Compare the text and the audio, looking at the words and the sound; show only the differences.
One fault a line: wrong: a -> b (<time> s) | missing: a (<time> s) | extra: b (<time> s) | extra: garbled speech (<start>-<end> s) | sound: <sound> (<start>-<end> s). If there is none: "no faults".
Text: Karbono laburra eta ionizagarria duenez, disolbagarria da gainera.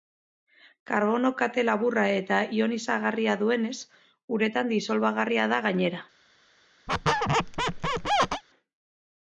extra: kate (1.4 s)
extra: uretan (4.4 s)
sound: squeak (6.9-8.4 s)